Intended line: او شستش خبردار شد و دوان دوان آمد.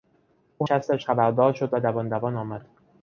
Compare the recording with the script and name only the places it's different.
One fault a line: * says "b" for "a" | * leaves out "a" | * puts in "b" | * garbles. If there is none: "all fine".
all fine